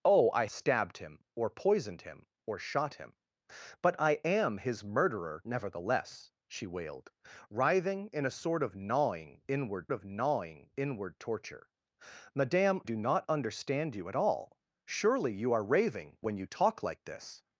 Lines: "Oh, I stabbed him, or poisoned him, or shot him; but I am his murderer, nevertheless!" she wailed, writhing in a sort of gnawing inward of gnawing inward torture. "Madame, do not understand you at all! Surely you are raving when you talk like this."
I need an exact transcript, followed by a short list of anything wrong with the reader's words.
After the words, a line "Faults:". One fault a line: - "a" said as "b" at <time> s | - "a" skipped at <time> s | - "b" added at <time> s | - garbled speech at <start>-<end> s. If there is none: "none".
"Oh, I stabbed him, or poisoned him, or shot him; but I am his murderer, nevertheless!" she wailed, writhing in a sort of gnawing inward of gnawing inward torture. "Madame, do not understand you at all! Surely you are raving when you talk like this."
Faults:
none